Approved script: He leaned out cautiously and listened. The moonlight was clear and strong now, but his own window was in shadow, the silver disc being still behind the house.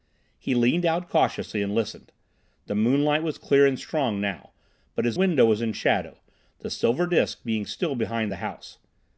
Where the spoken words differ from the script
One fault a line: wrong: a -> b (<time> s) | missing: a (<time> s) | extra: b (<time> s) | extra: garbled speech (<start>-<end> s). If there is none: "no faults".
missing: own (5.2 s)